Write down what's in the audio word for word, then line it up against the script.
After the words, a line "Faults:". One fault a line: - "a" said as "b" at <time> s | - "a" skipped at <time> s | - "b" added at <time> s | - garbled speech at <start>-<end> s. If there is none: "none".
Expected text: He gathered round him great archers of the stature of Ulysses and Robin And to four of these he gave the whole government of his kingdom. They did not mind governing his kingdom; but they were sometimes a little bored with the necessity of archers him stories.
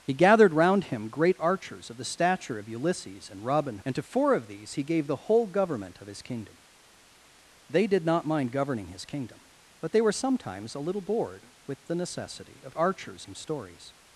He gathered round him great archers of the stature of Ulysses and Robin And to four of these he gave the whole government of his kingdom. They did not mind governing his kingdom; but they were sometimes a little bored with the necessity of archers him stories.
Faults:
none